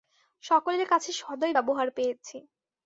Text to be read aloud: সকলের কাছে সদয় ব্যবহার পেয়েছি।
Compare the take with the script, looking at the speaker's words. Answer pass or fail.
pass